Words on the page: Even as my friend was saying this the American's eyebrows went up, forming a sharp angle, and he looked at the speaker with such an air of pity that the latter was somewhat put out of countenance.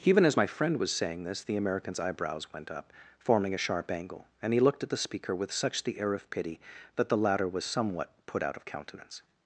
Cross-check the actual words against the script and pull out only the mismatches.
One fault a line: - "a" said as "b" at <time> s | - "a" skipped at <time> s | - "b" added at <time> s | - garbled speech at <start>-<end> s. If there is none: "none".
- "an" said as "the" at 5.8 s